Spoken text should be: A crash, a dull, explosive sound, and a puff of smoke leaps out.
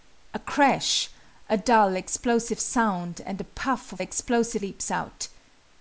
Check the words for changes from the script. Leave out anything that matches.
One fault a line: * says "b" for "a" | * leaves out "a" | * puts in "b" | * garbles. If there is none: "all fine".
* says "explosive" for "smoke"